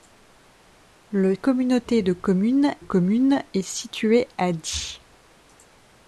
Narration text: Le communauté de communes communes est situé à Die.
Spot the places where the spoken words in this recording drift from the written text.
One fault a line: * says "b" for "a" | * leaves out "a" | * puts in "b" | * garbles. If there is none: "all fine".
all fine